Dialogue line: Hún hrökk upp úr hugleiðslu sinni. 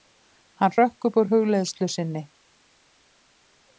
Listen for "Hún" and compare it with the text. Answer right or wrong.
wrong